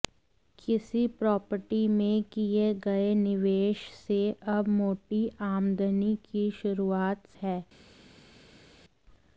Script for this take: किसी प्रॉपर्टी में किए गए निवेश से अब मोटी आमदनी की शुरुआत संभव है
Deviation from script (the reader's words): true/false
true